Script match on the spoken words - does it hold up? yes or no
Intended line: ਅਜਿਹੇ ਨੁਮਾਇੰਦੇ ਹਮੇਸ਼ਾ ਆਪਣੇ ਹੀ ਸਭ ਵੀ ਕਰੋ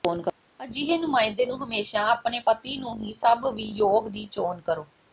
no